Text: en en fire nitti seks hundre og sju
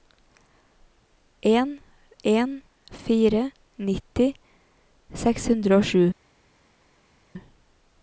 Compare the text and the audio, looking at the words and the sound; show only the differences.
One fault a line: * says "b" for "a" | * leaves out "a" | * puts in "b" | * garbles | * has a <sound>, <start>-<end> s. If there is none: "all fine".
all fine